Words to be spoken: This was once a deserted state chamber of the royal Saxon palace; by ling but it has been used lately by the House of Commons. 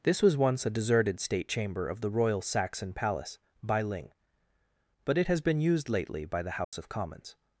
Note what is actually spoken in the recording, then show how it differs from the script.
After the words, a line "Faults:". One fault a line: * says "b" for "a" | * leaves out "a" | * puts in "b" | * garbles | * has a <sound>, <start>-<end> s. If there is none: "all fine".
This was once a deserted state chamber of the royal Saxon palace; by ling but it has been used lately by the House of Commons.
Faults:
* has a dropout, 6.6-6.7 s